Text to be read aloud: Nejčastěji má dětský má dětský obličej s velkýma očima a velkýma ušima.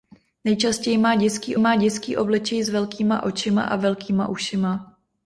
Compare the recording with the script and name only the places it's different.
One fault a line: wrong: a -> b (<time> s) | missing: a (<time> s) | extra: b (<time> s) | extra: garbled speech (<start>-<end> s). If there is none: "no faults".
no faults